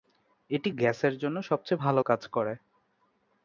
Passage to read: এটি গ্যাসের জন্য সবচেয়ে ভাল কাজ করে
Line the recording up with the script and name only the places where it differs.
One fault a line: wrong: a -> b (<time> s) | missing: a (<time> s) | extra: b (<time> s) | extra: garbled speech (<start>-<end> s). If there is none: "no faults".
no faults